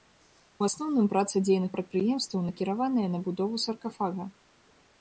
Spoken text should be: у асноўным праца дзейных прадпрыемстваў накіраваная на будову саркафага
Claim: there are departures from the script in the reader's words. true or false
false